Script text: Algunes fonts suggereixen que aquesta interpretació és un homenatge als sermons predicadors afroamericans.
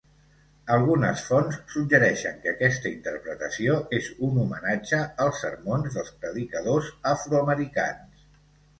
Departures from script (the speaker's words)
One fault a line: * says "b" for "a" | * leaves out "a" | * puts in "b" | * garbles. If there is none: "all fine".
* puts in "dels"